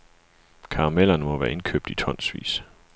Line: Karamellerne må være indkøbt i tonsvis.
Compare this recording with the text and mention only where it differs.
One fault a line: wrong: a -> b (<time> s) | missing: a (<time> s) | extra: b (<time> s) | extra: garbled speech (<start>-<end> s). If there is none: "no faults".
no faults